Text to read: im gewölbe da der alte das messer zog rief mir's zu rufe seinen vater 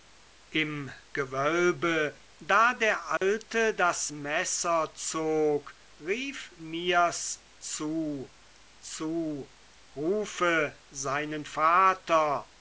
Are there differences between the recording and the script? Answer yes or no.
yes